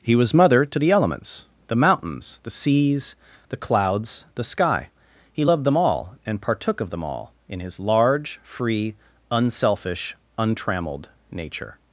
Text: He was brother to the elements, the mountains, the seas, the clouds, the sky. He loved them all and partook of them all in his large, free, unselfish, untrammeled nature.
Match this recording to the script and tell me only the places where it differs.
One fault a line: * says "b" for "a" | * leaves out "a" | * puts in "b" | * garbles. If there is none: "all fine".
* says "mother" for "brother"